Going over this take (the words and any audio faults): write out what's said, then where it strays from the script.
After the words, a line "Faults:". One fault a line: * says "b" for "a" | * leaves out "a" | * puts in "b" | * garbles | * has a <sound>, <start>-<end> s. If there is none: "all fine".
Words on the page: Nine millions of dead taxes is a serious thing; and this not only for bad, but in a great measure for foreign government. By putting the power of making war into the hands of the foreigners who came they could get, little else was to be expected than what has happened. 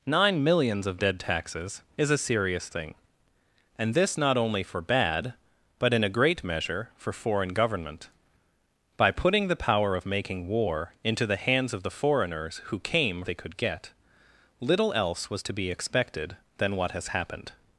Nine millions of dead taxes is a serious thing; and this not only for bad, but in a great measure for foreign government. By putting the power of making war into the hands of the foreigners who came they could get, little else was to be expected than what has happened.
Faults:
all fine